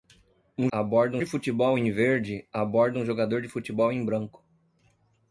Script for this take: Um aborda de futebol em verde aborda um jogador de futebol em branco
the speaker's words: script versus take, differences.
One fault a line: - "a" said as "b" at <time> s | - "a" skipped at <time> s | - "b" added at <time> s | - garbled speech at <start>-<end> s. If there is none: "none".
none